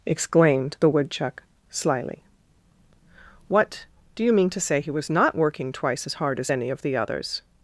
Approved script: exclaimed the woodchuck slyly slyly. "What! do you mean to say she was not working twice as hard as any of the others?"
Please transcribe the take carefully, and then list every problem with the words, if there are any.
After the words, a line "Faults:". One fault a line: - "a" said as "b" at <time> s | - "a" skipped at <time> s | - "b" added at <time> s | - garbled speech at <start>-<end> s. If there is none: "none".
exclaimed the woodchuck slyly. "What! do you mean to say he was not working twice as hard as any of the others?"
Faults:
- "slyly" skipped at 2.2 s
- "she" said as "he" at 4.8 s